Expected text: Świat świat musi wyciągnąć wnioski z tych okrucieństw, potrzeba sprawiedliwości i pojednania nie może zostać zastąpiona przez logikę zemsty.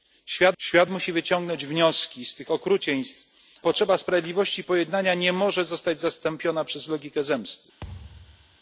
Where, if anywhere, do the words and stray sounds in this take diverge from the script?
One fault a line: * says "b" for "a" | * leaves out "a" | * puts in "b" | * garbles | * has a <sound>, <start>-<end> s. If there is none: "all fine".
* has a thud, 7.8-8.6 s